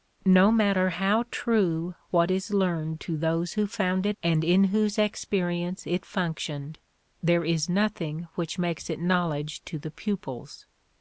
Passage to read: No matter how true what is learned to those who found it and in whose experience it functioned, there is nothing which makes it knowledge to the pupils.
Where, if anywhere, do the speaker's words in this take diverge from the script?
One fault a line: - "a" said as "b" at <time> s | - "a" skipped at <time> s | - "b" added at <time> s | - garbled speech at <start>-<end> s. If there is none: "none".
none